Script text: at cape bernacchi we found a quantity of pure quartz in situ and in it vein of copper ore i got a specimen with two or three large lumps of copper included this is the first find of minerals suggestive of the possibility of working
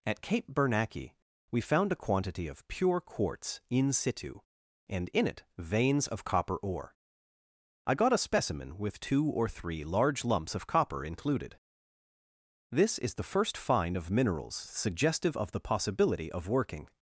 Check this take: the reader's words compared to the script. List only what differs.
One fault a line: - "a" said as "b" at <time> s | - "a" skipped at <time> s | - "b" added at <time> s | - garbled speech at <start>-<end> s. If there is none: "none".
- "vein" said as "veins" at 5.6 s